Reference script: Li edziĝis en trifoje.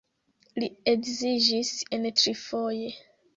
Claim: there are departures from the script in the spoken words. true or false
false